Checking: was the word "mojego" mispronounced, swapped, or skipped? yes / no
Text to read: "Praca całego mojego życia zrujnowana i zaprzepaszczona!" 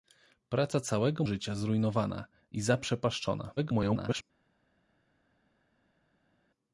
yes